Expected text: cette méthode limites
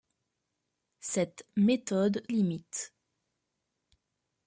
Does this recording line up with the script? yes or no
yes